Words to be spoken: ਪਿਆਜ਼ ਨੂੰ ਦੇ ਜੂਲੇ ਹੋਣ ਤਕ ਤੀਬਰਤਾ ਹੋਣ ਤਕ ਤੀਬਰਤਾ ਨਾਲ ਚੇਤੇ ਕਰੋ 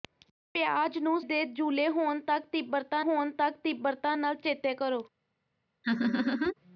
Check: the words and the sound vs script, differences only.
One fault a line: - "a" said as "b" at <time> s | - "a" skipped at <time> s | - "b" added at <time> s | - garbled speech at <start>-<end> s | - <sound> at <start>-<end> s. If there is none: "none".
- laugh at 5.8-6.5 s